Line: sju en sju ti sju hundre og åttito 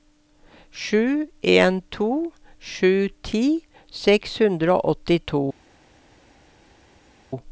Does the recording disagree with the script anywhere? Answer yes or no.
yes